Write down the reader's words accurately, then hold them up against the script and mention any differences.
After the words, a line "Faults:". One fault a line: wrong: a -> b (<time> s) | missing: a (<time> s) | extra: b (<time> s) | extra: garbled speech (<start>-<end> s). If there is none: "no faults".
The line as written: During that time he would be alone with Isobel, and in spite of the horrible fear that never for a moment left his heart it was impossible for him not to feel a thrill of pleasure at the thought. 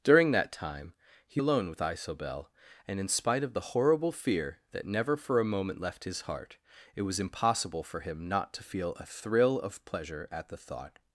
During that time he alone with Isobel, and in spite of the horrible fear that never for a moment left his heart it was impossible for him not to feel a thrill of pleasure at the thought.
Faults:
missing: would be (1.4 s)